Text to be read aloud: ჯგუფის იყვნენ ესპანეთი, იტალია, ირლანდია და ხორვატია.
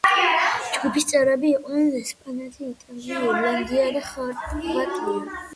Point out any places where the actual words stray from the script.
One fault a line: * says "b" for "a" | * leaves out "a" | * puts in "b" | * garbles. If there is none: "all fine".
* puts in "წევრები"